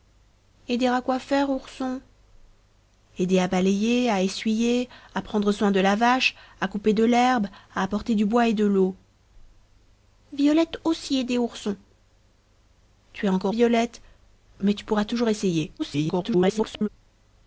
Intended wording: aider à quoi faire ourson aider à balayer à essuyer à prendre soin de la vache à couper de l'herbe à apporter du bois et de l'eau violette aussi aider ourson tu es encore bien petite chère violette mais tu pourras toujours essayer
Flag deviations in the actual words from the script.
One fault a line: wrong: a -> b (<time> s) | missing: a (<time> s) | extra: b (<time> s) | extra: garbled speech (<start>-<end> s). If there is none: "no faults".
missing: bien petite chère (13.5 s)
extra: garbled speech (15.8-16.9 s)